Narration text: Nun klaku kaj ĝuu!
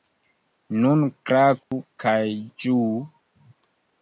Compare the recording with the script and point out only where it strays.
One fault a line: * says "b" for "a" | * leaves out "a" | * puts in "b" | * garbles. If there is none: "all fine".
all fine